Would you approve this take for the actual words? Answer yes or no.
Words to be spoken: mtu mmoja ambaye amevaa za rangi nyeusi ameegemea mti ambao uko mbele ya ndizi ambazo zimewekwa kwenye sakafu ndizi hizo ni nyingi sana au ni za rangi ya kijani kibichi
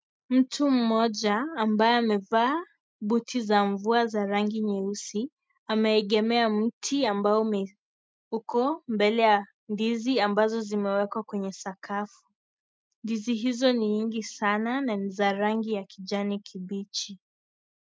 no